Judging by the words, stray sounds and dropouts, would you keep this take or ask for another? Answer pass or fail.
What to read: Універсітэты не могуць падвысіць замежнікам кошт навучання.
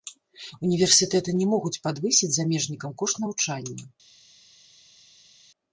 pass